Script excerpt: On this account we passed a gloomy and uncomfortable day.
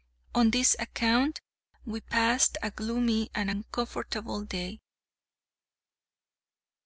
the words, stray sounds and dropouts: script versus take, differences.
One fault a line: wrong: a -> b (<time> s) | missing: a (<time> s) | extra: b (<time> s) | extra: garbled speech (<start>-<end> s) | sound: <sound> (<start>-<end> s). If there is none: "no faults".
no faults